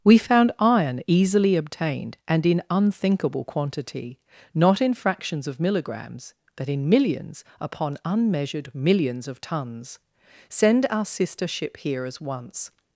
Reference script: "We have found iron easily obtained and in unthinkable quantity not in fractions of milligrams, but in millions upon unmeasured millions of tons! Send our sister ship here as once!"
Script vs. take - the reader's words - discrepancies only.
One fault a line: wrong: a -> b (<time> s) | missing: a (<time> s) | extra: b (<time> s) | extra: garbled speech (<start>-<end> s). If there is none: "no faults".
missing: have (0.2 s)